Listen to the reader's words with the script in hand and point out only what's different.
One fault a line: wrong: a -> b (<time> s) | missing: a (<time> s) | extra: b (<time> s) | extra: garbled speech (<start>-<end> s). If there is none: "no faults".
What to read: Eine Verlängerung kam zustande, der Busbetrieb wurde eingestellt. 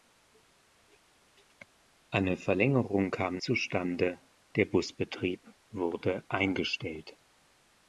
no faults